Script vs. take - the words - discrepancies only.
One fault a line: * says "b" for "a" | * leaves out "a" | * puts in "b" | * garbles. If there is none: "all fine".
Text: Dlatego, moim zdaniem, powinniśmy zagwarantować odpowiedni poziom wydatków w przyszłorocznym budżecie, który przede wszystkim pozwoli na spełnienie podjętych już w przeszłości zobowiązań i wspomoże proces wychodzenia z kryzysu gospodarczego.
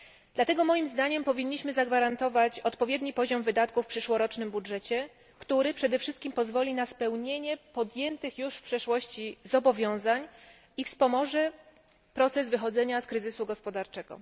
all fine